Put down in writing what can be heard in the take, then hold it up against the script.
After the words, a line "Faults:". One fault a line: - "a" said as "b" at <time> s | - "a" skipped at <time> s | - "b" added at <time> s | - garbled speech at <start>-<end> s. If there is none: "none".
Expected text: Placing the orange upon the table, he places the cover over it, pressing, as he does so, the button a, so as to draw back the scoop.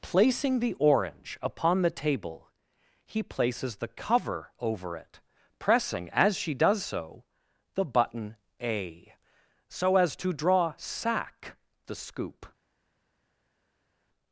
Placing the orange upon the table, he places the cover over it, pressing, as she does so, the button a, so as to draw sack the scoop.
Faults:
- "he" said as "she" at 6.4 s
- "back" said as "sack" at 10.8 s